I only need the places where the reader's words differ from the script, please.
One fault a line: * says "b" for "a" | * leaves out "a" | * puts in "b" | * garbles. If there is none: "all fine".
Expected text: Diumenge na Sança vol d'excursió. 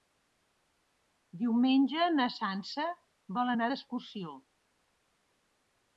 * puts in "anar"